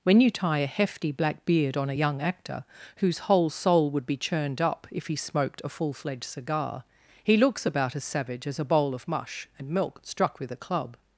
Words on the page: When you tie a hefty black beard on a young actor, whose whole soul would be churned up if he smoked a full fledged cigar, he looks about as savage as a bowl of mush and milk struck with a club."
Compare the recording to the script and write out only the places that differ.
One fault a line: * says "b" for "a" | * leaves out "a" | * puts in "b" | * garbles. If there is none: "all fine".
all fine